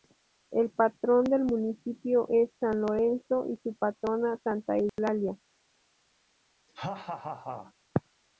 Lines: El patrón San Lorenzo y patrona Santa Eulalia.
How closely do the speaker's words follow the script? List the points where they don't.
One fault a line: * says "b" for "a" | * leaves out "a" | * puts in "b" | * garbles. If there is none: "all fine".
* puts in "del municipio es"
* puts in "su"